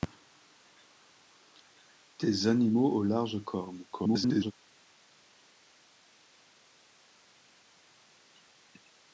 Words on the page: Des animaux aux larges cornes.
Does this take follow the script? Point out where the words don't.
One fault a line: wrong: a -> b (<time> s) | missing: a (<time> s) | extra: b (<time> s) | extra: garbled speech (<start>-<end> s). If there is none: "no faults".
extra: garbled speech (3.9-4.5 s)